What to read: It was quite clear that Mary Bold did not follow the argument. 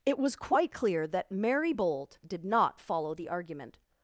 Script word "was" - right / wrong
right